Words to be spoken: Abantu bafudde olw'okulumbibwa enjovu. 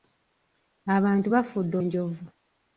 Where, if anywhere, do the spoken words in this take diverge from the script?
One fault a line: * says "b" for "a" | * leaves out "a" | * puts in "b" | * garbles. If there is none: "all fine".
* leaves out "olw'okulumbibwa"